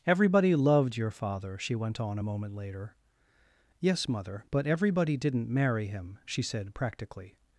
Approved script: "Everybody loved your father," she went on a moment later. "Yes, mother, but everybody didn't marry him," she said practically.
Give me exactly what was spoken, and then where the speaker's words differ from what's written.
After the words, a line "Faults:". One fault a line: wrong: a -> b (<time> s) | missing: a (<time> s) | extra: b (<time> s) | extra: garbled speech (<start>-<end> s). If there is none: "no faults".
"Everybody loved your father," she went on a moment later. "Yes, mother, but everybody didn't marry him," she said practically.
Faults:
no faults